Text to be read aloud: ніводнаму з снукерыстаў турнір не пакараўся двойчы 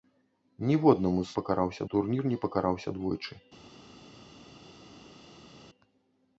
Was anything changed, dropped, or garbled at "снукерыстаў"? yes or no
yes